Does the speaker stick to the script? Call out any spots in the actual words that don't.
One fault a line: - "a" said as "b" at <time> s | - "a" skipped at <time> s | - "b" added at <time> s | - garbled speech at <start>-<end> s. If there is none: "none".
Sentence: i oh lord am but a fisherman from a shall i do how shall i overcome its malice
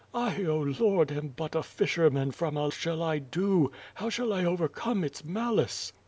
none